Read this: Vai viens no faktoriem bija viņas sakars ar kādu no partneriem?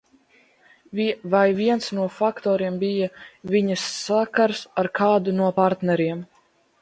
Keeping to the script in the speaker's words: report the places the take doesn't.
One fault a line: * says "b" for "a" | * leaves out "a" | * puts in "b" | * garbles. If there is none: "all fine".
all fine